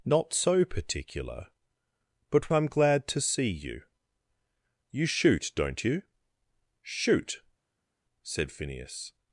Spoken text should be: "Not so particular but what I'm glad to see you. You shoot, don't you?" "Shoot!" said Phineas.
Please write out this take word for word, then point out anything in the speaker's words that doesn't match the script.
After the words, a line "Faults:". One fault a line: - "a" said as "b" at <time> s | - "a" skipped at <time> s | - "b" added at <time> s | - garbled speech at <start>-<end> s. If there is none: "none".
"Not so particular but I'm glad to see you. You shoot, don't you?" "Shoot!" said Phineas.
Faults:
- "what" skipped at 2.5 s